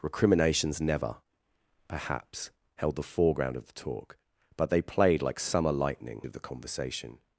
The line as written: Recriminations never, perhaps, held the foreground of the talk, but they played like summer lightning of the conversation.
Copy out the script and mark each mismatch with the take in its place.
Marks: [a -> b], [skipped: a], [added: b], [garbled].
Recriminations never, perhaps, held the foreground of the talk, but they played like summer lightning of the conversation.